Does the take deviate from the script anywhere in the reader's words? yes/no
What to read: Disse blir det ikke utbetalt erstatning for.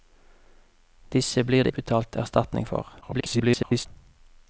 yes